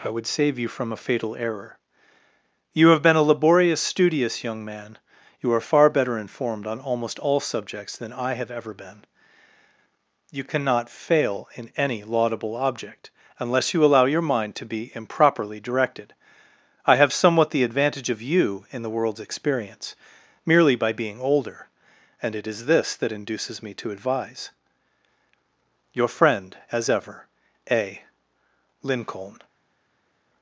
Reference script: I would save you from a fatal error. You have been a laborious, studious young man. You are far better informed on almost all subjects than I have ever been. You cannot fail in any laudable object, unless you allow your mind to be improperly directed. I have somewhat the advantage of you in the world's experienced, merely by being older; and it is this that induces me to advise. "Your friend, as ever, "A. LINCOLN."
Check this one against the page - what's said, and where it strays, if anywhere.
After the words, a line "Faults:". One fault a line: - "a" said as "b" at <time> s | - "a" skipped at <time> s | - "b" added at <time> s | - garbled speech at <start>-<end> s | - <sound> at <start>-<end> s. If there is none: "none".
I would save you from a fatal error. You have been a laborious, studious young man. You are far better informed on almost all subjects than I have ever been. You cannot fail in any laudable object, unless you allow your mind to be improperly directed. I have somewhat the advantage of you in the world's experience, merely by being older; and it is this that induces me to advise. "Your friend, as ever, "A. LINCOLN."
Faults:
- "experienced" said as "experience" at 19.2 s